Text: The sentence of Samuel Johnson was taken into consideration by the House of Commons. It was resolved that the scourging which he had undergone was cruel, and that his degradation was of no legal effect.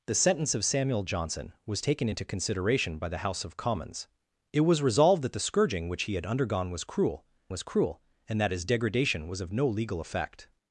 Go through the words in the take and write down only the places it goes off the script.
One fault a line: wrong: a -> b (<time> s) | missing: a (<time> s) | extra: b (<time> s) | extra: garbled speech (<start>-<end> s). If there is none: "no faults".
extra: was cruel (7.5 s)